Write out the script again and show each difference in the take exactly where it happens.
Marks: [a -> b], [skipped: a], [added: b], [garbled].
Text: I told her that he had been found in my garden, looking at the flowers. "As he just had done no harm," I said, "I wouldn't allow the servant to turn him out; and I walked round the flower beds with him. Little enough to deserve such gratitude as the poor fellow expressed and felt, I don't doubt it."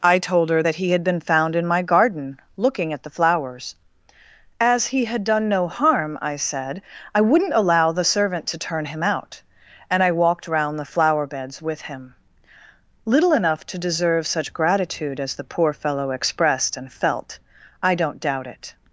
I told her that he had been found in my garden, looking at the flowers. "As he [skipped: just] had done no harm," I said, "I wouldn't allow the servant to turn him out; and I walked round the flower beds with him. Little enough to deserve such gratitude as the poor fellow expressed and felt, I don't doubt it."